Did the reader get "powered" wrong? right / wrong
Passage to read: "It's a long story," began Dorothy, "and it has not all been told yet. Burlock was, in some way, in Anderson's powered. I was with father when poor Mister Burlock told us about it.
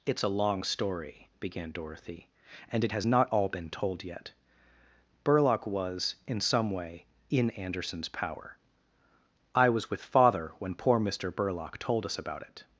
wrong